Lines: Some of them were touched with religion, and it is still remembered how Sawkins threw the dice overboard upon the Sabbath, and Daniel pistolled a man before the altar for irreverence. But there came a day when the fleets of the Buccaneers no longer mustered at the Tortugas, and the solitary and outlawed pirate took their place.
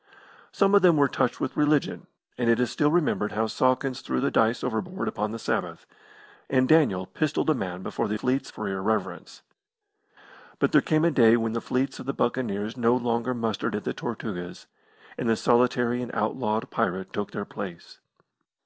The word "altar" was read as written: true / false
false